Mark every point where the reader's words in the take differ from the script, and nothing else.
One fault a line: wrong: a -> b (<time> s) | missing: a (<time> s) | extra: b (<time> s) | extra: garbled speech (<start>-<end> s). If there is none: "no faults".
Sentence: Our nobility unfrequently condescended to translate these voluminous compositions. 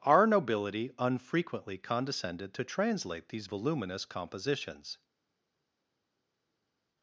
no faults